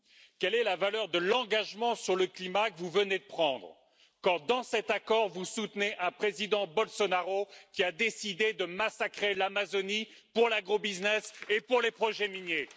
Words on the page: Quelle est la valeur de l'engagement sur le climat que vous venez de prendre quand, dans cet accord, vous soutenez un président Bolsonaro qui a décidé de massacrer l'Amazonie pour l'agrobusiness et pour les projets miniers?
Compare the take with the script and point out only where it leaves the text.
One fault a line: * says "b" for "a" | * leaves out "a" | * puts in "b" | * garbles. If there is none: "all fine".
all fine